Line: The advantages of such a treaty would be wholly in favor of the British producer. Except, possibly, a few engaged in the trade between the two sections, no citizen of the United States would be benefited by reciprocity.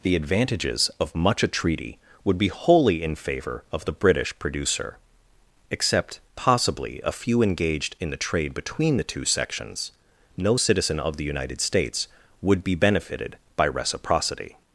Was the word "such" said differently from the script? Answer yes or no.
yes